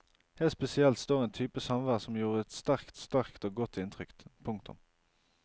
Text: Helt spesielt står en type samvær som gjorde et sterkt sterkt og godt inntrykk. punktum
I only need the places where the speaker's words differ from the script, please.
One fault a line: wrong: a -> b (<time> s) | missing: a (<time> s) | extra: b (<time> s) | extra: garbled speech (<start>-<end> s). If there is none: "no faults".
no faults